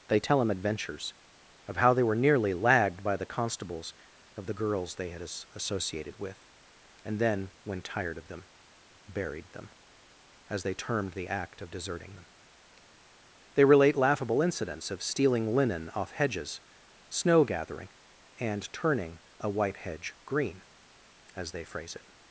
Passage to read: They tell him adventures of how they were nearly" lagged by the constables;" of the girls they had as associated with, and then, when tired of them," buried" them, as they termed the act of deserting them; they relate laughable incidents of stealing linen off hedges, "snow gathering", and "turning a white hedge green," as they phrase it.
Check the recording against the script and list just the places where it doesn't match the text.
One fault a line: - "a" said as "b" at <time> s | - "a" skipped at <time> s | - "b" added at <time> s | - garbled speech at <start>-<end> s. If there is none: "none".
none